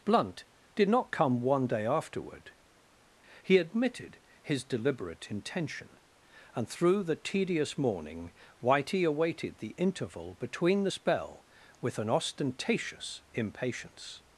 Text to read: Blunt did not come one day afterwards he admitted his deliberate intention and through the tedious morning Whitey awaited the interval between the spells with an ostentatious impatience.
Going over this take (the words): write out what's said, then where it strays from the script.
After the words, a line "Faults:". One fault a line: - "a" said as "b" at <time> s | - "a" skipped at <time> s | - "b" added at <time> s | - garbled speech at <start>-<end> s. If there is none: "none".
Blunt did not come one day afterward he admitted his deliberate intention and through the tedious morning Whitey awaited the interval between the spell with an ostentatious impatience.
Faults:
- "afterwards" said as "afterward" at 1.9 s
- "spells" said as "spell" at 10.9 s